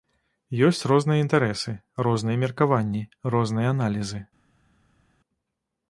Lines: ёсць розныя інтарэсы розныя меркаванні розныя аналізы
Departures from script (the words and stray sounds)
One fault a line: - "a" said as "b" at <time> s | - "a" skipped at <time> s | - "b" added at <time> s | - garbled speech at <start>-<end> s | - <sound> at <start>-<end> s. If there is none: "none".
none